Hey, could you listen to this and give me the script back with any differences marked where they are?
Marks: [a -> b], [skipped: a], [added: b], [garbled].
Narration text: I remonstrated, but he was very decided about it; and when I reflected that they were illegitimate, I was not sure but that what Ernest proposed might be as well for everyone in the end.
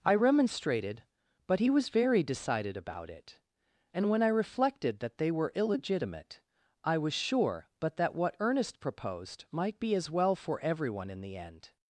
I remonstrated, but he was very decided about it; and when I reflected that they were illegitimate, I was [skipped: not] sure but that what Ernest proposed might be as well for everyone in the end.